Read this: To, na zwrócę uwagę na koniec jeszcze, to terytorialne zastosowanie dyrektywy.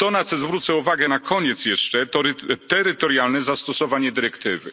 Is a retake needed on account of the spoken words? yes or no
yes